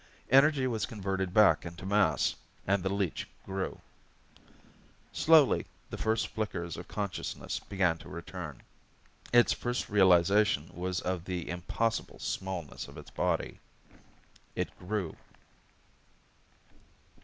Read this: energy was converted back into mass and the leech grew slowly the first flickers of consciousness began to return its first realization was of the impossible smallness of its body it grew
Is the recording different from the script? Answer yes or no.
no